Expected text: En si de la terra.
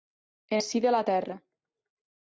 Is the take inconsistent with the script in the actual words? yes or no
no